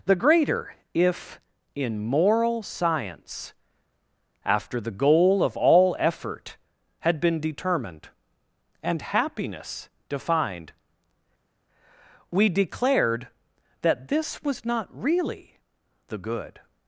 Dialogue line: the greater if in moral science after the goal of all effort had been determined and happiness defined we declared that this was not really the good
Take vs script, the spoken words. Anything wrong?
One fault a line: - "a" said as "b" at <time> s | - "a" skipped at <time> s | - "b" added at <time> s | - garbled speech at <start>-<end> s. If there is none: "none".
none